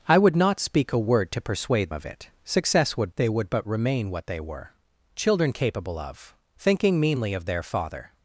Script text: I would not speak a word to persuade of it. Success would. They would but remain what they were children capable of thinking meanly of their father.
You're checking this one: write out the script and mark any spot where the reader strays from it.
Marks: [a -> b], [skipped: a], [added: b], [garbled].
I would not speak a word to persuade of it. Success would. They would but remain what they were children capable of thinking meanly of their father.